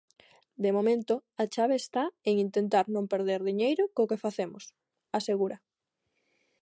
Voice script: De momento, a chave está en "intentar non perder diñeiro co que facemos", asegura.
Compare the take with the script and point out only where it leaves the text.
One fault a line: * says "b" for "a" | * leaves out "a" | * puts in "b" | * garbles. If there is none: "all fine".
all fine